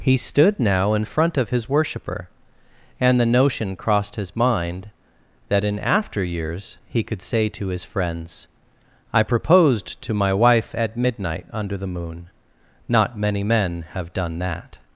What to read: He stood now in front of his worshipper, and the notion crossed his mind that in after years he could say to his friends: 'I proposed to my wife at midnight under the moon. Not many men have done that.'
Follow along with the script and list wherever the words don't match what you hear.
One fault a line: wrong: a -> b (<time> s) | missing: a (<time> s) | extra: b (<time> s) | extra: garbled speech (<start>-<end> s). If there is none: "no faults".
no faults